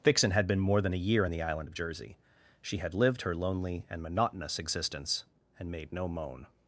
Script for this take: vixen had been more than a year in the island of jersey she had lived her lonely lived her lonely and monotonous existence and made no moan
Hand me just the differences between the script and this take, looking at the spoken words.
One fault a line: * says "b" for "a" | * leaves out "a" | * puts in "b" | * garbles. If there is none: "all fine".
* leaves out "lived her lonely"